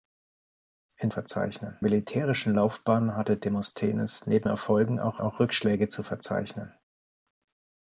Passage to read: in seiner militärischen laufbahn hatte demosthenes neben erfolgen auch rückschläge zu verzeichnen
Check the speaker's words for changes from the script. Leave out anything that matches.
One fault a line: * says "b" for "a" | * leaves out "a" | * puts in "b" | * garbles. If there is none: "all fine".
* says "verzeichnen" for "seiner"
* puts in "auch"